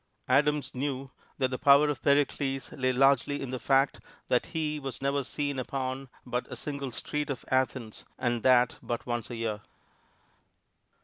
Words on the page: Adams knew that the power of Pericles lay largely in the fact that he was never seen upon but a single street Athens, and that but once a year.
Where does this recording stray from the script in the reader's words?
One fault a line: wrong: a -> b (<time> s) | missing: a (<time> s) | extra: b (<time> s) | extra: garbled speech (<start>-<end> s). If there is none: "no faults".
extra: of (7.3 s)